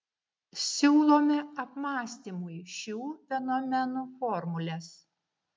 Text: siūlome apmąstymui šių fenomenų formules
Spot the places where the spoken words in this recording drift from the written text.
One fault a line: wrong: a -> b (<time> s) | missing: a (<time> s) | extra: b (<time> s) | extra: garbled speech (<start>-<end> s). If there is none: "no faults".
no faults